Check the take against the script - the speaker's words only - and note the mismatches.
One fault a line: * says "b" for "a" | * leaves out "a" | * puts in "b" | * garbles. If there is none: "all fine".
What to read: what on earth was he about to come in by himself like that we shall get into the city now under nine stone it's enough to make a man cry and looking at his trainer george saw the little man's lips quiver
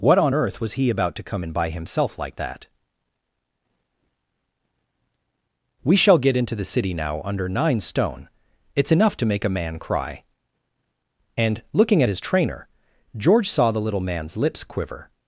all fine